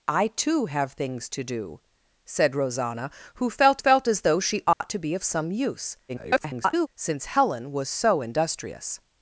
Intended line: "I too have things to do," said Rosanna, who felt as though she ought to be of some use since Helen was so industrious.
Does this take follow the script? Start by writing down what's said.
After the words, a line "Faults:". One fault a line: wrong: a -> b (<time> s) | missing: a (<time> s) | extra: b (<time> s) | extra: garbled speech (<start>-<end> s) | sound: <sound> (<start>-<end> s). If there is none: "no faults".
"I too have things to do," said Rosanna, who felt felt as though she ought to be of some use [garbled] since Helen was so industrious.
Faults:
extra: felt (3.8 s)
sound: dropout (4.7-4.8 s)
extra: garbled speech (6.1-6.9 s)